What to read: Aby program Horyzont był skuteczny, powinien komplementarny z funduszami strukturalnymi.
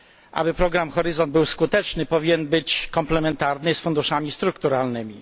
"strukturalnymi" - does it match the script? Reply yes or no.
yes